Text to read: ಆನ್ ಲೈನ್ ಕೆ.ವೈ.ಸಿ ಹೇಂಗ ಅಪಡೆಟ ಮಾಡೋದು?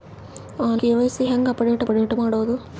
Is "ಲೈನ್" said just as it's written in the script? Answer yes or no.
no